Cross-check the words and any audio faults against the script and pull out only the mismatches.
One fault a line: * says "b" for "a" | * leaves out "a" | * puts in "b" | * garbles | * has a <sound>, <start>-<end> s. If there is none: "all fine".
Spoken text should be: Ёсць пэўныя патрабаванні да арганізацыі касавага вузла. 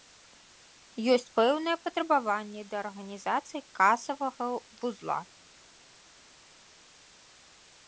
all fine